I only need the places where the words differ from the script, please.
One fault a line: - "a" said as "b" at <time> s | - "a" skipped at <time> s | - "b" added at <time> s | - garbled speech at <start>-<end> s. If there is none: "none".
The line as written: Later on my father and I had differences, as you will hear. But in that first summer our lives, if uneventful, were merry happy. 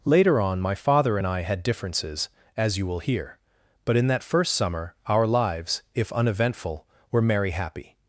none